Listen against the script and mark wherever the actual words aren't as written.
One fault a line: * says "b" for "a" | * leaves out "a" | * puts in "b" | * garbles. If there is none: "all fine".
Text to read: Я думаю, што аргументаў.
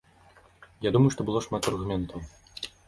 * puts in "было шмат"